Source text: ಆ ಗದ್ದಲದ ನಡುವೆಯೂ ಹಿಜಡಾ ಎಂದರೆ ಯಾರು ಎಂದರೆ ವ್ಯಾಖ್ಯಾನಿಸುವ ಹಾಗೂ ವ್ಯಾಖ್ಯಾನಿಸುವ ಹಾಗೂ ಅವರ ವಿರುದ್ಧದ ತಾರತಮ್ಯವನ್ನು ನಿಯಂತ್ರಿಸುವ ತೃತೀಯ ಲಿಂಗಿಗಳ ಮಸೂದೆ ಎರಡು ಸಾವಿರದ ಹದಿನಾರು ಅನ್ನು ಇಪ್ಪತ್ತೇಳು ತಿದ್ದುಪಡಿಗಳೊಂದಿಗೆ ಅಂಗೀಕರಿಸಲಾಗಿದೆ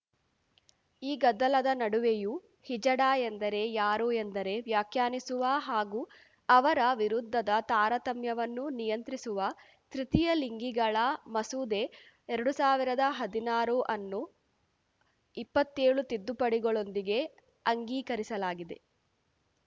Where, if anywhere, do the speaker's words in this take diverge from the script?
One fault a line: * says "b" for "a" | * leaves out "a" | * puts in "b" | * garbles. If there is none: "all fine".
* says "ಈ" for "ಆ"
* leaves out "ವ್ಯಾಖ್ಯಾನಿಸುವ ಹಾಗೂ"